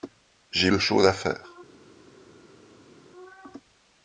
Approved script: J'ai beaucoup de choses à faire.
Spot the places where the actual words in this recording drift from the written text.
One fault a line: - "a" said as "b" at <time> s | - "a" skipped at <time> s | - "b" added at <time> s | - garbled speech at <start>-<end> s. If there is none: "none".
- "beaucoup" skipped at 0.7 s